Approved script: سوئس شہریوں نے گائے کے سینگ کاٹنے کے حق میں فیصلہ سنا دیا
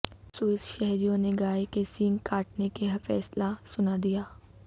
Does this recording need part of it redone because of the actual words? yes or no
yes